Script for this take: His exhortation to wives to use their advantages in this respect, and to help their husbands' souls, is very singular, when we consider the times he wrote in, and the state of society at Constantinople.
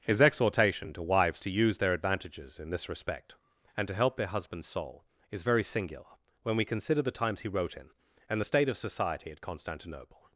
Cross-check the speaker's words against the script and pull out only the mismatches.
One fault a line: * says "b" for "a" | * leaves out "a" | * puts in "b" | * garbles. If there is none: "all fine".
* says "soul" for "souls"